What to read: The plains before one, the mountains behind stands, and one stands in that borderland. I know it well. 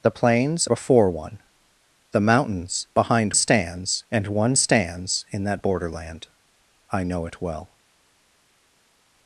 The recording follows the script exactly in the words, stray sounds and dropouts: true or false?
true